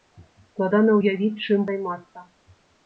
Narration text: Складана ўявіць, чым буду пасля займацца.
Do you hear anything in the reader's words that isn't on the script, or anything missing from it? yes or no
yes